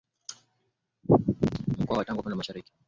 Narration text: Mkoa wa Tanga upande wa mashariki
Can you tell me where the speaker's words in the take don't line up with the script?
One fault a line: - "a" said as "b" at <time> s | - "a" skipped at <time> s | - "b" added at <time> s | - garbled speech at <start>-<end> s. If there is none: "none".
none